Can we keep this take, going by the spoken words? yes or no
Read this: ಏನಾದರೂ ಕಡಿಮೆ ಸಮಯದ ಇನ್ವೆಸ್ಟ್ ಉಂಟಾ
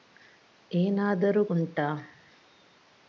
no